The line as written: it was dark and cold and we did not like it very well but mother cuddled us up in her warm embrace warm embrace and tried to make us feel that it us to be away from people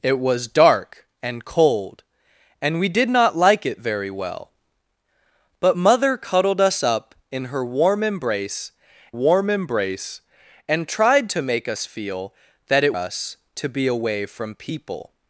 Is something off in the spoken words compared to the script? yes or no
no